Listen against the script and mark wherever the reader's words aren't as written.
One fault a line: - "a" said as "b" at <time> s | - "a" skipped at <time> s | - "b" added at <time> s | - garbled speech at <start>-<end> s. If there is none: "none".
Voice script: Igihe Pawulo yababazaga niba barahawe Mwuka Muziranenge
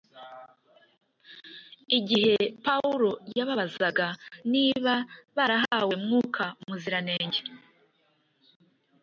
none